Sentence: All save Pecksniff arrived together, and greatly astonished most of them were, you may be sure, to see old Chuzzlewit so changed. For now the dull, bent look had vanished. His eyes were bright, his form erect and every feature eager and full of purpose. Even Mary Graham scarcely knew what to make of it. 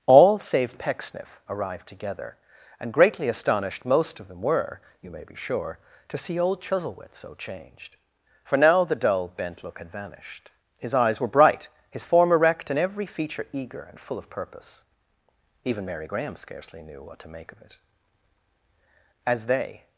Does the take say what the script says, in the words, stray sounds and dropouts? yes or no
no